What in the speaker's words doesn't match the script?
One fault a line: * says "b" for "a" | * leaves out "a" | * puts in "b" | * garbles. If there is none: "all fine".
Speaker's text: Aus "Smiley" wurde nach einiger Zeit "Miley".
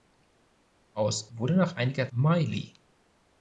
* leaves out "Smiley"
* leaves out "Zeit"